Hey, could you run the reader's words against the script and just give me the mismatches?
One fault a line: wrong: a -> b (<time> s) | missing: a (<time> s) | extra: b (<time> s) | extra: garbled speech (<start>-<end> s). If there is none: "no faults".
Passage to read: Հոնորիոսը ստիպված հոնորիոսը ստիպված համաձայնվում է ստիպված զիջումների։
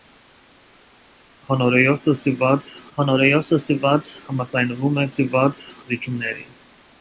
no faults